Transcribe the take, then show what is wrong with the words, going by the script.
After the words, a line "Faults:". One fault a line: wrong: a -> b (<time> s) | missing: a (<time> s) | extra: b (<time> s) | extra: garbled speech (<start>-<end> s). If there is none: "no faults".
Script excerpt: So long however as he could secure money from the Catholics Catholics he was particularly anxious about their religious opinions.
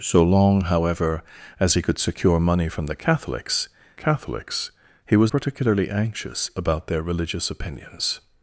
So long however as he could secure money from the Catholics Catholics he was particularly anxious about their religious opinions.
Faults:
no faults